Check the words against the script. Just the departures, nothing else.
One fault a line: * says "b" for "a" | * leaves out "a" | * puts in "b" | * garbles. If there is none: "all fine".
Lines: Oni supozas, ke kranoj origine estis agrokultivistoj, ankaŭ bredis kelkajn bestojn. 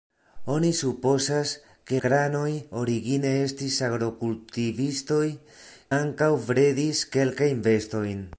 all fine